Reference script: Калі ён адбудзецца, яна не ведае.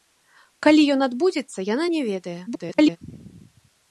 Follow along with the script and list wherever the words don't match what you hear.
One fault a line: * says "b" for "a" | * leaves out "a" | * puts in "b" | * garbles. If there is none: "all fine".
* garbles